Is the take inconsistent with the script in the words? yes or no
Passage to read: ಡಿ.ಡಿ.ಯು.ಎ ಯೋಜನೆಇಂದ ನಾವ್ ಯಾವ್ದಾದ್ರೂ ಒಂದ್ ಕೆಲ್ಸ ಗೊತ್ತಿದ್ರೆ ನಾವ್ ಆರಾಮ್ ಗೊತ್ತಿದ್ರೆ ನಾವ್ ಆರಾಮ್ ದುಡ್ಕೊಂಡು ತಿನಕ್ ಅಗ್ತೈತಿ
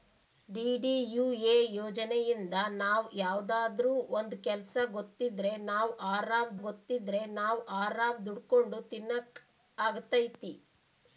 no